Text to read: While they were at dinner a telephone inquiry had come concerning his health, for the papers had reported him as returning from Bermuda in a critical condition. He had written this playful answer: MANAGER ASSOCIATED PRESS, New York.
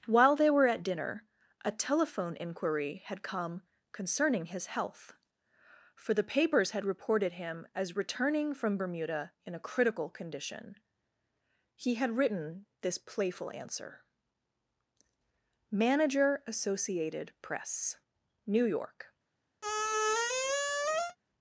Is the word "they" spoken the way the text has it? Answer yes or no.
yes